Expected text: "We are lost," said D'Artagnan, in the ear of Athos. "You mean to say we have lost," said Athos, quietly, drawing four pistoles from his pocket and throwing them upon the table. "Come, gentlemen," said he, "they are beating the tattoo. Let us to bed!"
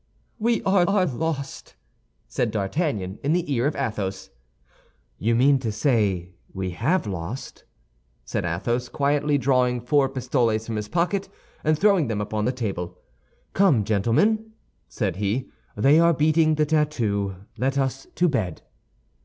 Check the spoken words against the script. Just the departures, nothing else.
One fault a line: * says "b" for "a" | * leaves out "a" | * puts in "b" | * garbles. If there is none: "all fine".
* puts in "are"